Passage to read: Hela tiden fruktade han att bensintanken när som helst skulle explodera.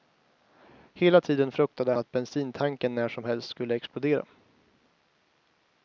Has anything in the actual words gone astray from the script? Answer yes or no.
yes